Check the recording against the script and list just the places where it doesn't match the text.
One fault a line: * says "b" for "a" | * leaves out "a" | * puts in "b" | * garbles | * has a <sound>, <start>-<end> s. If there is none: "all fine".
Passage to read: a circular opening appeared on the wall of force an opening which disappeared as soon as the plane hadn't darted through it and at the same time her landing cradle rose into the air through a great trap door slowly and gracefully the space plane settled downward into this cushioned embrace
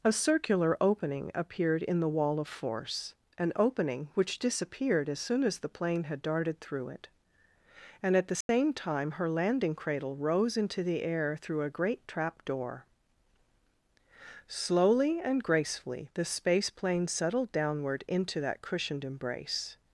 * says "in" for "on"
* says "had" for "hadn't"
* has a dropout, 8.4-8.5 s
* says "that" for "this"